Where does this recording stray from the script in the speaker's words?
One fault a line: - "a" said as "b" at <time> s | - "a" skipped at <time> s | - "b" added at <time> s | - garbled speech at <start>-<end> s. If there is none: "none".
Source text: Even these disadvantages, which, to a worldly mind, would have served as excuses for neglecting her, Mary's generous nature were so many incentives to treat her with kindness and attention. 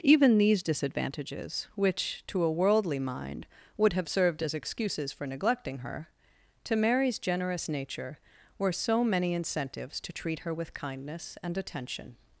- "to" added at 6.6 s